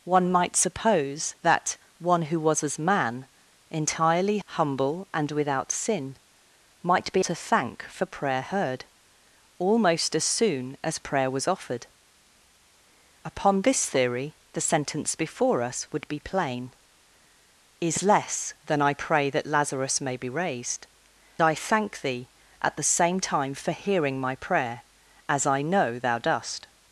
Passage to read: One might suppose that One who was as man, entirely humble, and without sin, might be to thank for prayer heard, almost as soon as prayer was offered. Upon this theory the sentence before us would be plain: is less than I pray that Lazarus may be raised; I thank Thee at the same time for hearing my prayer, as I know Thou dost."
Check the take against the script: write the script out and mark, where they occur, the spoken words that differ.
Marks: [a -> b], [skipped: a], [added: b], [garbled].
One might suppose that One who was as man, entirely humble, and without sin, might be to thank for prayer heard, almost as soon as prayer was offered. Upon this theory the sentence before us would be plain: is less than I pray that Lazarus may be raised; I thank Thee at the same time for hearing my prayer, as I know Thou dost."